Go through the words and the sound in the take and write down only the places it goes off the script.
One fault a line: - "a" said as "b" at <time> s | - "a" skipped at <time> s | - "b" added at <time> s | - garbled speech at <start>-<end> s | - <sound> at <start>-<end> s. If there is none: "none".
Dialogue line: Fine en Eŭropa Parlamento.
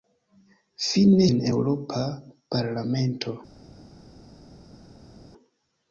none